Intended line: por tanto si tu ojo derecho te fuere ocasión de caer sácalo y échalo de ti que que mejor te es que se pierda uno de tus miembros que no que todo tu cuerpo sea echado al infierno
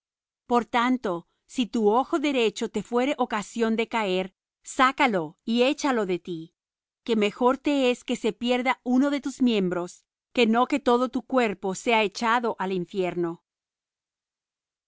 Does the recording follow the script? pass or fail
fail